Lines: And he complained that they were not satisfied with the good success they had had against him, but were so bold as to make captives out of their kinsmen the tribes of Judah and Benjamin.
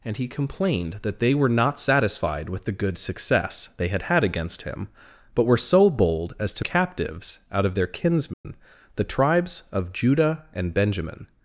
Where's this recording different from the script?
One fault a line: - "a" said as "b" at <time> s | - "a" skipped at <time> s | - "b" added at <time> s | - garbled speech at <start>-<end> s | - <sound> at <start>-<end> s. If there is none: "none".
- "make" skipped at 6.7 s
- dropout at 8.3-8.4 s